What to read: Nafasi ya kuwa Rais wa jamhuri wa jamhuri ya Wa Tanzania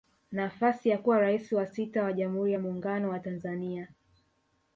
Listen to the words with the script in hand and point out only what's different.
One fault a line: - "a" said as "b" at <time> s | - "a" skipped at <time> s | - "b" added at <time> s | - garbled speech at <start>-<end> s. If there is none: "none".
- "jamhuri" said as "sita" at 1.6 s
- "Muungano" added at 2.6 s